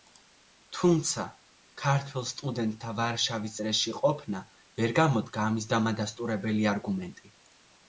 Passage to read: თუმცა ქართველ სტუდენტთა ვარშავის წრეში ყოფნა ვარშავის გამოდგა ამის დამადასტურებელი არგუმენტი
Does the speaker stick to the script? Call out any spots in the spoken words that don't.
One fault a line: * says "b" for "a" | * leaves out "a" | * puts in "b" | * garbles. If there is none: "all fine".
* says "ვერ" for "ვარშავის"